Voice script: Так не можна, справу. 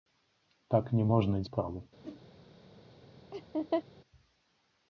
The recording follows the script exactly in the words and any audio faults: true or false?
false